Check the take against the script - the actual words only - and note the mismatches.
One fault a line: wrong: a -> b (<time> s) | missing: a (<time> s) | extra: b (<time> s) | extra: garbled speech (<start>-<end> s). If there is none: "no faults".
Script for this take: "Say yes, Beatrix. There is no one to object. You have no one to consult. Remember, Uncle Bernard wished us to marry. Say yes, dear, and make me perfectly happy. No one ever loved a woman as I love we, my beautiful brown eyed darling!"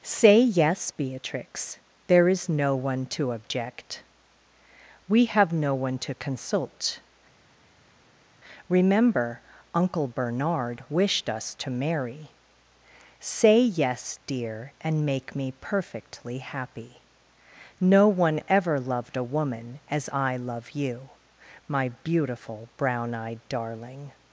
wrong: You -> We (5.1 s)
wrong: we -> you (20.7 s)